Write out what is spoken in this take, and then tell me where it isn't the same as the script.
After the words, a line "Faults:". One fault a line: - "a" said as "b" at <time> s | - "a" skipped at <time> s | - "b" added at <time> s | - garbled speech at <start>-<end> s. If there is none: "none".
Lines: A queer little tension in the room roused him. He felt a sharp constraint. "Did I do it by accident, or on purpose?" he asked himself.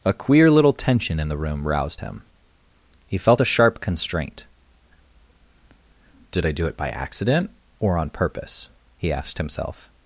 A queer little tension in the room roused him. He felt a sharp constraint. "Did I do it by accident, or on purpose?" he asked himself.
Faults:
none